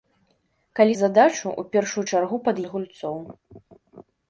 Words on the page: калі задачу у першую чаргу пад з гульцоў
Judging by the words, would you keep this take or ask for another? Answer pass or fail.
pass